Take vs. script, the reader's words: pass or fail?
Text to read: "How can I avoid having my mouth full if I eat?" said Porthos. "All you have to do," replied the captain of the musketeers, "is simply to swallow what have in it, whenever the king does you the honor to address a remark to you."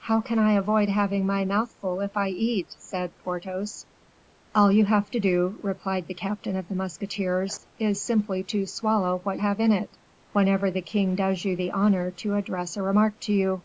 pass